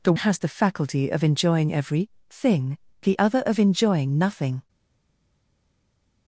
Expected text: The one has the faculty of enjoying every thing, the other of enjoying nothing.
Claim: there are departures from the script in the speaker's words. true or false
true